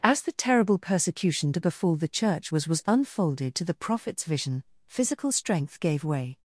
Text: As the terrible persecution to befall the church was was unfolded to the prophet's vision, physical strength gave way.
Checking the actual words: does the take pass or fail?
pass